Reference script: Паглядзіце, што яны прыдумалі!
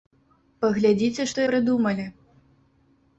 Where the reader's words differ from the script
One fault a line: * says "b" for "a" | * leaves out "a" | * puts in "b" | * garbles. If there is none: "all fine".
* leaves out "яны"